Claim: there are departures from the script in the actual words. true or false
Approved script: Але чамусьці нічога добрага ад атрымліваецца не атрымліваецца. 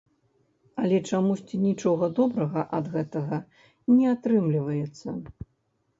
true